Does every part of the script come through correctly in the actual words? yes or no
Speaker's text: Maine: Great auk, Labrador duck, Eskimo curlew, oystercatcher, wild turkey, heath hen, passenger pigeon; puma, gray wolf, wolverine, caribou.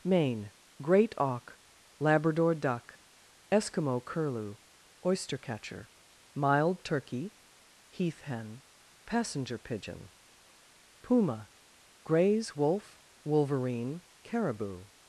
no